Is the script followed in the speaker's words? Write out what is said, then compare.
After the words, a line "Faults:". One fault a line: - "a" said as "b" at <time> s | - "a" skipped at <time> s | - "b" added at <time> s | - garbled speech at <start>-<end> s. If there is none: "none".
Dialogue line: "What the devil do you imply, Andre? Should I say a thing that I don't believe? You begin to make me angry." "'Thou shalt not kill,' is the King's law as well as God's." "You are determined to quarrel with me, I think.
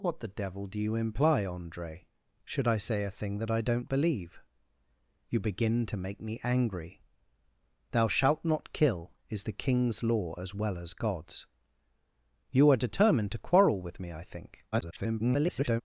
"What the devil do you imply, Andre? Should I say a thing that I don't believe? You begin to make me angry." "'Thou shalt not kill,' is the King's law as well as God's." "You are determined to quarrel with me, I think. [garbled]
Faults:
- garbled speech at 14.7-15.8 s